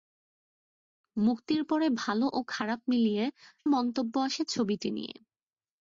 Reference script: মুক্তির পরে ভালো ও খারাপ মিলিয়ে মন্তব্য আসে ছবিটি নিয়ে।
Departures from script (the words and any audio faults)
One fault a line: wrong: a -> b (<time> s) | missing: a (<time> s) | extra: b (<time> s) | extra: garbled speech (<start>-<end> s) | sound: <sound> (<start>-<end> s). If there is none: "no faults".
no faults